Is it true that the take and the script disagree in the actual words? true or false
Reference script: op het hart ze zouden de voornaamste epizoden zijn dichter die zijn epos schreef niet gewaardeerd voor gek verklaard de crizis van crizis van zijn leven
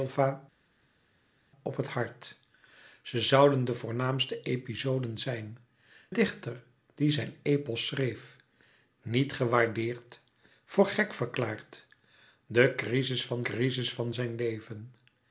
false